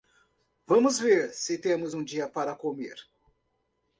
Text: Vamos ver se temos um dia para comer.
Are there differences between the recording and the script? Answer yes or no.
no